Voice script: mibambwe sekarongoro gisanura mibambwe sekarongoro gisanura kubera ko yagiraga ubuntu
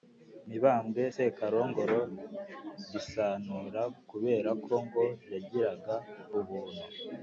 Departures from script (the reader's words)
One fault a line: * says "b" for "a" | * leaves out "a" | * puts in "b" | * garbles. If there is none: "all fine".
* leaves out "mibambwe sekarongoro gisanura"
* puts in "ngo"